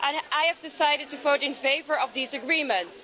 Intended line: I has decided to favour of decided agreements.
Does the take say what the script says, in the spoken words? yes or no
no